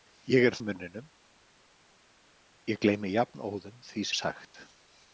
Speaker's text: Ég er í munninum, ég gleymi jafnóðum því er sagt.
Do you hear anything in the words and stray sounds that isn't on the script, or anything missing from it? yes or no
no